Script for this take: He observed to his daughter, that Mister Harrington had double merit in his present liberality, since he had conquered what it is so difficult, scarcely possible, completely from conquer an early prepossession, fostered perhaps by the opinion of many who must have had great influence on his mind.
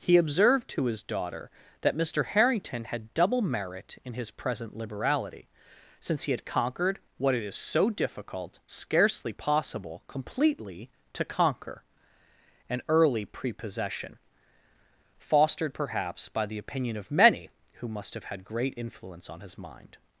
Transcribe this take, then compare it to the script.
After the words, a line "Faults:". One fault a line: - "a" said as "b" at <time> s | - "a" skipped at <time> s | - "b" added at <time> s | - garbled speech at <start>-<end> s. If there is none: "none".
He observed to his daughter, that Mister Harrington had double merit in his present liberality, since he had conquered what it is so difficult, scarcely possible, completely to conquer an early prepossession, fostered perhaps by the opinion of many who must have had great influence on his mind.
Faults:
- "from" said as "to" at 11.1 s